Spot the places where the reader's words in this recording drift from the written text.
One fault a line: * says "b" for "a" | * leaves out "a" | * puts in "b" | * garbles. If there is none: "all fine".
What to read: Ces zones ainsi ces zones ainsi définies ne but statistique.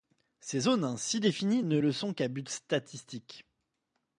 * says "définies ne le sont qu'à" for "ces zones ainsi définies ne"